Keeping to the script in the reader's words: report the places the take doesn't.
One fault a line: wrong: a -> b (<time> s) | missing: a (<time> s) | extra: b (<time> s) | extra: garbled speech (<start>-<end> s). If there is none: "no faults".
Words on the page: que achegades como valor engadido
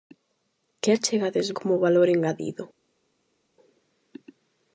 no faults